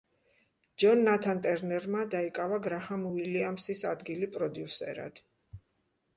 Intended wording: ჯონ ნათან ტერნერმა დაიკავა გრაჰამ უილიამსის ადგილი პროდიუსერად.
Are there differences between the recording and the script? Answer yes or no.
no